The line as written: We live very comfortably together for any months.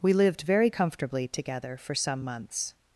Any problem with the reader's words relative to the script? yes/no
yes